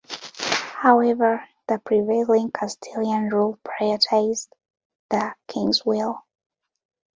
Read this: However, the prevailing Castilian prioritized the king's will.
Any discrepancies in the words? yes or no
yes